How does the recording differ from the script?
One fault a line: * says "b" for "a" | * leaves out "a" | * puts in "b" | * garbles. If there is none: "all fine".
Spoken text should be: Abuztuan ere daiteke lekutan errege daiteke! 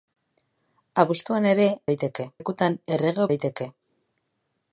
all fine